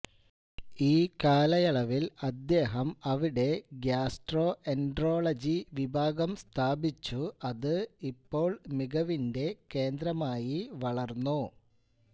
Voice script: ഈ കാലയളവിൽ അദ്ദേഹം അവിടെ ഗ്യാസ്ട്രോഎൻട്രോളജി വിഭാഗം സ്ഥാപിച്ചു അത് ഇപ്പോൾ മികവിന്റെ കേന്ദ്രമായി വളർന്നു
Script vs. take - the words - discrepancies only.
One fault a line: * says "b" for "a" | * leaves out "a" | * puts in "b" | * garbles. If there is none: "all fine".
all fine